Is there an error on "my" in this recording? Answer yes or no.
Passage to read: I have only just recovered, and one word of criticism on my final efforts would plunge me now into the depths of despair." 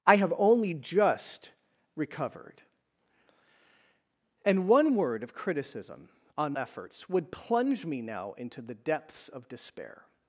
yes